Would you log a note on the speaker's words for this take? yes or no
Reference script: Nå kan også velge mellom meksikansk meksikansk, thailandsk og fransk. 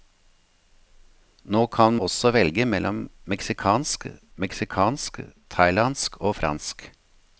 no